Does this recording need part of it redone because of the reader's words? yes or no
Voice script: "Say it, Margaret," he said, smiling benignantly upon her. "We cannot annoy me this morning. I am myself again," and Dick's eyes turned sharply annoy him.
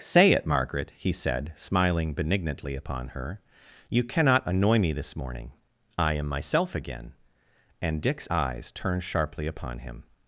yes